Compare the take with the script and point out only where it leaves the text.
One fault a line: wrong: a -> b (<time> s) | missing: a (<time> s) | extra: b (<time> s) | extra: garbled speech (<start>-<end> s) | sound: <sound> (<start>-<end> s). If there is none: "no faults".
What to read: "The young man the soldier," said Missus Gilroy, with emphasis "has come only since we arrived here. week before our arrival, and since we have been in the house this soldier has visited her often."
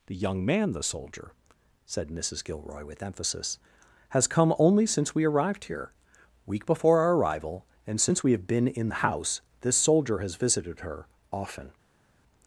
no faults